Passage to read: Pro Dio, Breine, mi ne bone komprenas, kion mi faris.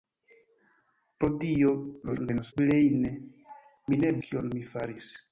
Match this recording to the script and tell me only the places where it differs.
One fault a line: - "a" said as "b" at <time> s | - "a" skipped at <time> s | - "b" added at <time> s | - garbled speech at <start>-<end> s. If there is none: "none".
- garbled speech at 2.0-2.5 s
- "bone komprenas" skipped at 4.1 s